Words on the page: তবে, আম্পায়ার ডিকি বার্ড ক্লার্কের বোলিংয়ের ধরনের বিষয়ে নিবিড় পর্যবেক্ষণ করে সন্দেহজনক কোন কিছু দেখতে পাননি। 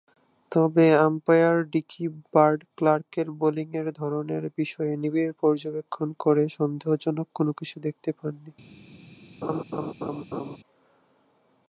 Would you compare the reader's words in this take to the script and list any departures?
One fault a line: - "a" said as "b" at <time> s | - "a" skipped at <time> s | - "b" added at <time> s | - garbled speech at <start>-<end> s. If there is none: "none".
none